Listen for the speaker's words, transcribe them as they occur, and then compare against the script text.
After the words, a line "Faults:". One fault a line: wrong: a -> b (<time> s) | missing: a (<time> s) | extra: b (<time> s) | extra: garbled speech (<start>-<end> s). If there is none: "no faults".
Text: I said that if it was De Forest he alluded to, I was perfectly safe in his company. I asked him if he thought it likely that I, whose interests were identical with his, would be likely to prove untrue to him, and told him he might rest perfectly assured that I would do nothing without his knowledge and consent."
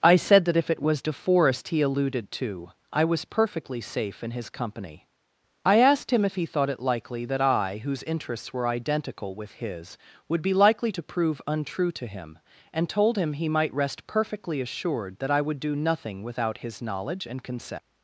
I said that if it was De Forest he alluded to, I was perfectly safe in his company. I asked him if he thought it likely that I, whose interests were identical with his, would be likely to prove untrue to him, and told him he might rest perfectly assured that I would do nothing without his knowledge and consent."
Faults:
no faults